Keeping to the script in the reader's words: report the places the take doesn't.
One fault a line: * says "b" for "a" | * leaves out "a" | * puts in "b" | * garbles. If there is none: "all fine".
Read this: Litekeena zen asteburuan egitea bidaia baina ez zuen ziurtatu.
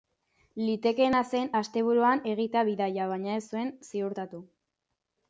all fine